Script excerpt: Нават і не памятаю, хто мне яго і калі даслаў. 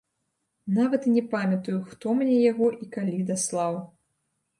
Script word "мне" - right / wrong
right